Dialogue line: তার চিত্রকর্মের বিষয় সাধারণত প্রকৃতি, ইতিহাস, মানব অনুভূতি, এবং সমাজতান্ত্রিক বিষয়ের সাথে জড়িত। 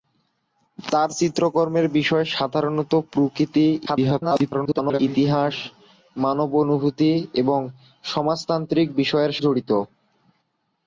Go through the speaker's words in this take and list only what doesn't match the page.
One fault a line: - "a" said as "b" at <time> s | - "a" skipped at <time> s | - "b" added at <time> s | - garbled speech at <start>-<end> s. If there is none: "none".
- garbled speech at 3.9-5.0 s
- "সাথে" skipped at 9.3 s